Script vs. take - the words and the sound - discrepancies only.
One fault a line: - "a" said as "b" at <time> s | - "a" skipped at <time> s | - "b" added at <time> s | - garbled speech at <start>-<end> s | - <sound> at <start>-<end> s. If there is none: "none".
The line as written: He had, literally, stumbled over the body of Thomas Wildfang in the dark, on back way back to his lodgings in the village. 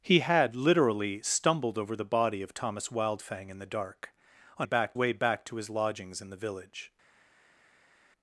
none